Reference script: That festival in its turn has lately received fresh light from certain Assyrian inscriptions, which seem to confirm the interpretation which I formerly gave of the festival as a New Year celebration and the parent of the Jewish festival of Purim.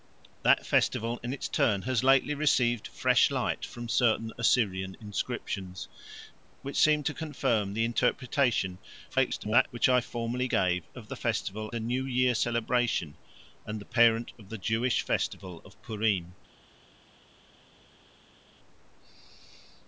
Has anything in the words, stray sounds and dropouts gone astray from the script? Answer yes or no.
yes